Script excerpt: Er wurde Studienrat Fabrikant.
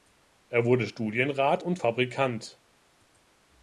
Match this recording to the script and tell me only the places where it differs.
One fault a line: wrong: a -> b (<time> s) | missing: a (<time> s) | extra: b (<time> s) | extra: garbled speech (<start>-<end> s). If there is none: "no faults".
extra: und (1.6 s)